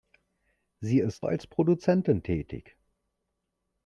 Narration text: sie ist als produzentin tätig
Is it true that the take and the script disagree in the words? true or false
false